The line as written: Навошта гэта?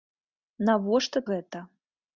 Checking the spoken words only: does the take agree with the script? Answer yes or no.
yes